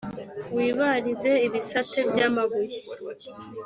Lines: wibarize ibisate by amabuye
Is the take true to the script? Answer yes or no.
yes